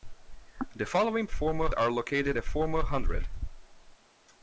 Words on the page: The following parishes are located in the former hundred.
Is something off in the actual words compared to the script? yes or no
yes